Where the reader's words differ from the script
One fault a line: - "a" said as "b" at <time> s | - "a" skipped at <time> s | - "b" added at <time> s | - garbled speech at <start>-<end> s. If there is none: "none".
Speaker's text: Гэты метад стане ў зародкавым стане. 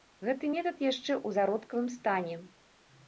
- "стане" said as "яшчэ" at 0.8 s